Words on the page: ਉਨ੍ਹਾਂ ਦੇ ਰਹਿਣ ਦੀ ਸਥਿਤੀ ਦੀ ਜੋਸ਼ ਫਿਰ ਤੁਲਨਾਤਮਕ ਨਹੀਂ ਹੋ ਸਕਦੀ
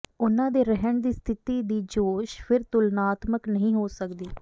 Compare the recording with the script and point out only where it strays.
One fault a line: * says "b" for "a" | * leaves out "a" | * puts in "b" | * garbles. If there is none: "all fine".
all fine